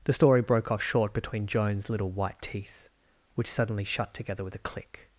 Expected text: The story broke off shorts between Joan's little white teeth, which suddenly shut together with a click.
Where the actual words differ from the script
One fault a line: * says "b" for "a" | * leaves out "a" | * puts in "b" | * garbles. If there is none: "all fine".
* says "short" for "shorts"